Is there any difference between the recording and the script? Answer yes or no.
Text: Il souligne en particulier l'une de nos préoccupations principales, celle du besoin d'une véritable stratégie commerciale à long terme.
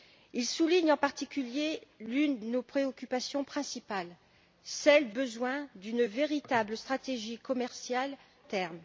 yes